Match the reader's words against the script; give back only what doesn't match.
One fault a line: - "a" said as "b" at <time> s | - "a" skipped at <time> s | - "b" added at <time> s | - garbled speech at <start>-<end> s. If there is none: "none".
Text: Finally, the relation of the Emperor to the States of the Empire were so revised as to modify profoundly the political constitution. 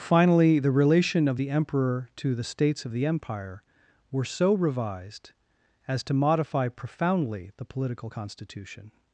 none